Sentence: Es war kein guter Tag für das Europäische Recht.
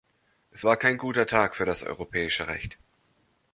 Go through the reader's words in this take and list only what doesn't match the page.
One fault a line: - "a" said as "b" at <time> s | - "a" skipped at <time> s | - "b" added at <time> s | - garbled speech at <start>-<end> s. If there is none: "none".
none